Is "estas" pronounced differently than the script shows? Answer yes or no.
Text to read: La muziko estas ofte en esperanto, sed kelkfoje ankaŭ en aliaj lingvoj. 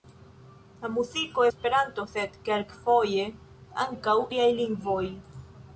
yes